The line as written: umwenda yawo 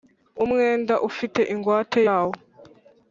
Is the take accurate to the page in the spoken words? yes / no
no